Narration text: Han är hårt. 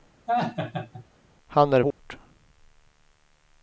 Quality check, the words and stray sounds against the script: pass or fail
fail